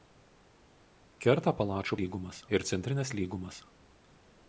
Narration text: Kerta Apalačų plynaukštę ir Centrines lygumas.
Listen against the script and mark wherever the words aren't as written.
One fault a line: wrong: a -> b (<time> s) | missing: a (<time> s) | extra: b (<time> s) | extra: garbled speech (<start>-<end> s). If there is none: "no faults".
wrong: plynaukštę -> lygumas (2.0 s)